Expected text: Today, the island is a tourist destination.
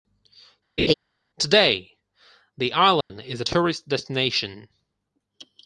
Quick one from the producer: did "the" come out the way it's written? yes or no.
yes